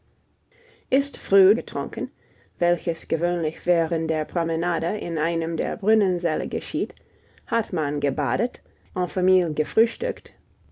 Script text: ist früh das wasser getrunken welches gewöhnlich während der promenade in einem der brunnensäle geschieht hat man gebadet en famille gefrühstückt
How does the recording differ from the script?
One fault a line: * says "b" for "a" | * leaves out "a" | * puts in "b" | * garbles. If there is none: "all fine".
* leaves out "das wasser"